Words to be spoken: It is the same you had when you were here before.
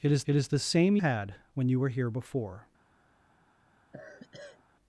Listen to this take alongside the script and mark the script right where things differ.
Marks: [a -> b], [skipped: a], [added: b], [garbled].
It is [added: it is] the same [skipped: you] had when you were here before.